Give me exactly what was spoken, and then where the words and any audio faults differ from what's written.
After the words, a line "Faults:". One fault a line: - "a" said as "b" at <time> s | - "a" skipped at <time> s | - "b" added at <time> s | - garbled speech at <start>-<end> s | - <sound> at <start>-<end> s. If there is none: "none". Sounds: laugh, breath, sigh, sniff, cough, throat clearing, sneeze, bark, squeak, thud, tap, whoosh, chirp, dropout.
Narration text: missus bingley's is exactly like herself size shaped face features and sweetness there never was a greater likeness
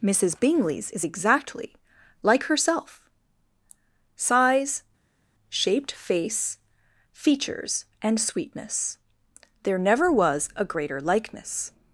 missus bingley's is exactly like herself size shaped face features and sweetness there never was a greater likeness
Faults:
none